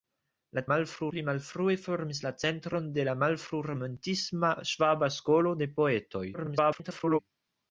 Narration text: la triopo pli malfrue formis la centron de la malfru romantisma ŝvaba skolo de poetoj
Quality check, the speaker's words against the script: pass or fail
fail